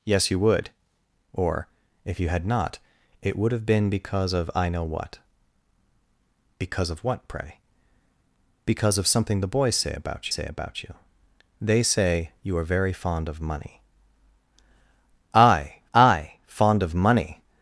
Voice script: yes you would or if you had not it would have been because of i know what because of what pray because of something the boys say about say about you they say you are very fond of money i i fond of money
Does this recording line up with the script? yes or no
yes